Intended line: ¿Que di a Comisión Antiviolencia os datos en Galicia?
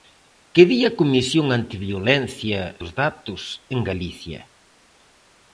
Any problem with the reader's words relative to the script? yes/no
no